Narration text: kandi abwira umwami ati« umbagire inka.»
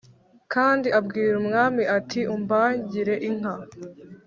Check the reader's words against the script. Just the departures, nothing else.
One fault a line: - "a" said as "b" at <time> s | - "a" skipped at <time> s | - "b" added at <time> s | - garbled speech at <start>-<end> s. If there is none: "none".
none